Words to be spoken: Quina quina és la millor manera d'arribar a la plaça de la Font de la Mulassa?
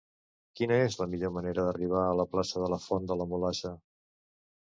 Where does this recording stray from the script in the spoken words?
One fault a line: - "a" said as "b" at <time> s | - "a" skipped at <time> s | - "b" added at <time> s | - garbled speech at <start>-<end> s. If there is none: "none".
- "quina" skipped at 0.8 s